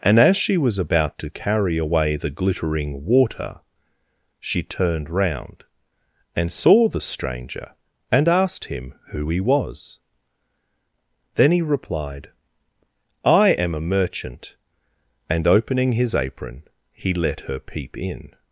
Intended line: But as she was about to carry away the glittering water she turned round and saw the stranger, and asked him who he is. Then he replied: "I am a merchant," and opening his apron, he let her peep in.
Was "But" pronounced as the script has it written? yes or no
no